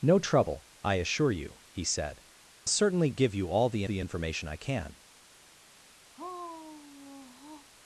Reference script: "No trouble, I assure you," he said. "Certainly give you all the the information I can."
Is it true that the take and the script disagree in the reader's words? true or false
false